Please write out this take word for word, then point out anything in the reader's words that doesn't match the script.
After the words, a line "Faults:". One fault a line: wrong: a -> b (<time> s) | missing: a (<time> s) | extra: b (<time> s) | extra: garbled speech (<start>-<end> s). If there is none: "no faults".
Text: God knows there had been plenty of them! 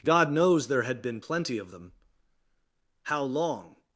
God knows there had been plenty of them! How long
Faults:
extra: How long (3.0 s)